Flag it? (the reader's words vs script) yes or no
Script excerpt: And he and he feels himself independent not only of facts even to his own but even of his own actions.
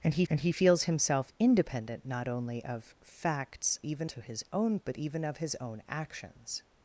no